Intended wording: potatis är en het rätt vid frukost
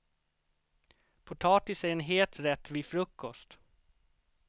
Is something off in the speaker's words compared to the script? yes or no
no